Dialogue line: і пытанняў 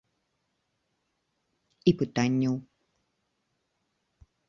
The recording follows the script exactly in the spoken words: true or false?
true